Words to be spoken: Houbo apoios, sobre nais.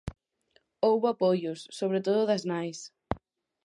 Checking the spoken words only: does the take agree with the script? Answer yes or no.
no